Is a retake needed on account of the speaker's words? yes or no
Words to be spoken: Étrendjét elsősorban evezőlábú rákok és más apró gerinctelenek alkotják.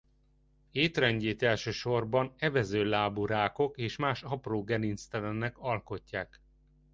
no